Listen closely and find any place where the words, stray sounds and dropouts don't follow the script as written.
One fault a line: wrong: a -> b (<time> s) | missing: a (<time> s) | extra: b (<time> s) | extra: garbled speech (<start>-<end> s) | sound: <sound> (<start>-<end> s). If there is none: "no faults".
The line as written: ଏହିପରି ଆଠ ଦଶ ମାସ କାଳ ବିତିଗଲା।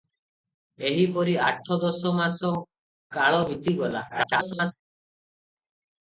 extra: garbled speech (4.1-4.7 s)